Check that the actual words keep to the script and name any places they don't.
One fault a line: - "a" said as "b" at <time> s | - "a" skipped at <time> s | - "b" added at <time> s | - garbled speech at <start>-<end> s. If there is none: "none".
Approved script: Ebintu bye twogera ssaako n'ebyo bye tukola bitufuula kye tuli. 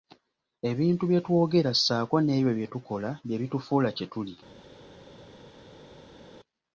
- "bye" added at 3.2 s